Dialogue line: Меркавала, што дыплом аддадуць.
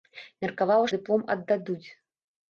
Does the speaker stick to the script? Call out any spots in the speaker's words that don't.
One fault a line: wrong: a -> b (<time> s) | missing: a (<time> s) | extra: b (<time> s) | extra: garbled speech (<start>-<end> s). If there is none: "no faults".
missing: што (0.9 s)